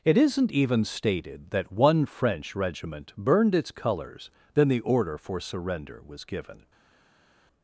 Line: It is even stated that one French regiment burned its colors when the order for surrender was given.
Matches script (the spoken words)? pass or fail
fail